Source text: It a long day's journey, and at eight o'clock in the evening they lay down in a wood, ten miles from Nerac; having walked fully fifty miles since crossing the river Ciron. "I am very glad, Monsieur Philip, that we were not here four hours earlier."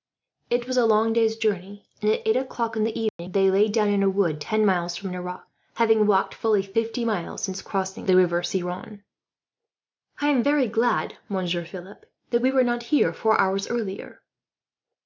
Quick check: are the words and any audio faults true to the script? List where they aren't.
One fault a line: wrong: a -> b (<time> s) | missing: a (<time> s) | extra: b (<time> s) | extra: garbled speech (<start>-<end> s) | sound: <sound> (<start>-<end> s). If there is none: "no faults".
extra: was (0.7 s)
sound: dropout (3.1-3.2 s)